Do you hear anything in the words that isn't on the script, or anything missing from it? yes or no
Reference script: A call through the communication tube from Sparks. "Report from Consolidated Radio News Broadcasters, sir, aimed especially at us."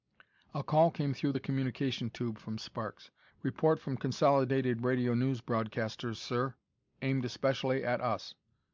yes